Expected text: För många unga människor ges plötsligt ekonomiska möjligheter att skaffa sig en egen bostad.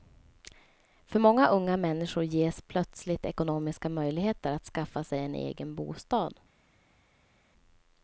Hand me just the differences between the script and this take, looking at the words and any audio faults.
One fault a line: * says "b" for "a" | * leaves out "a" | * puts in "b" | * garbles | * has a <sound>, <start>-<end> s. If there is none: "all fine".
all fine